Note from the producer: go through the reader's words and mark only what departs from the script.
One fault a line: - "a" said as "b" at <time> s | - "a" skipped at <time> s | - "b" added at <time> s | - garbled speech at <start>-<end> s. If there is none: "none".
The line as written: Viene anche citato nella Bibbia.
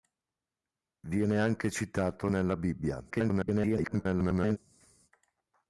- garbled speech at 3.1-4.6 s